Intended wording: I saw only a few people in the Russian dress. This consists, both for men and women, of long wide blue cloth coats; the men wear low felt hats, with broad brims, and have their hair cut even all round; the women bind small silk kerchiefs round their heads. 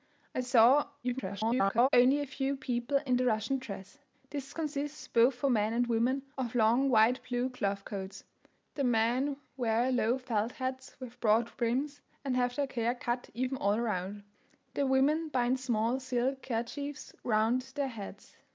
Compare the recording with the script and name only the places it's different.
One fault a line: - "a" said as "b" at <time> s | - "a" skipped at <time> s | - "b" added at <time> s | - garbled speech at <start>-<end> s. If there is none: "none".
- garbled speech at 1.0-1.9 s